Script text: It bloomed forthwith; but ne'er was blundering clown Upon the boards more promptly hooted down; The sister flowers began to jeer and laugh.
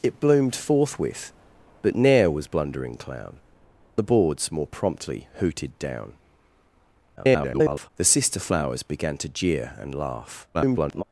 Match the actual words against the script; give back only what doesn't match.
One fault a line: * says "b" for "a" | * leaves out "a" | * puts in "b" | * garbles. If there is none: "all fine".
* leaves out "Upon"
* garbles
* garbles